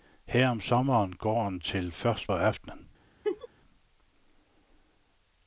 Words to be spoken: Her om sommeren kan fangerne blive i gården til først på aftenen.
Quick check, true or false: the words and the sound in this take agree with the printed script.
false